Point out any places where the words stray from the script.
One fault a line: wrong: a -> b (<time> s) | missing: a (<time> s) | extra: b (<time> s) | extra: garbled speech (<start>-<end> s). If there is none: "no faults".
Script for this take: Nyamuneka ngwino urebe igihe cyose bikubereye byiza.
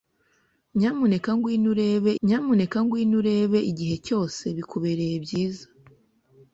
extra: nyamuneka ngwino urebe (2.2 s)